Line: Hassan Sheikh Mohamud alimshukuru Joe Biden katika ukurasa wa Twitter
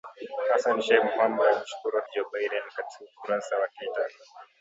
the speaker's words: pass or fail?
pass